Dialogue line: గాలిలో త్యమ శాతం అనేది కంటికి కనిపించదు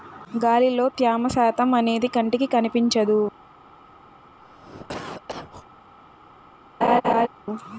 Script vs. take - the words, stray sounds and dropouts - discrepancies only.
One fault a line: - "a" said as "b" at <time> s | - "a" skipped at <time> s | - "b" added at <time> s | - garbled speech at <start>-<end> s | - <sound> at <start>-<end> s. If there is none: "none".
- cough at 4.4-5.7 s
- laugh at 6.8-7.3 s